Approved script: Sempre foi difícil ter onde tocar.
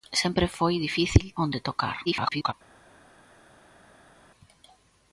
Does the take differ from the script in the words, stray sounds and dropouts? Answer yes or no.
yes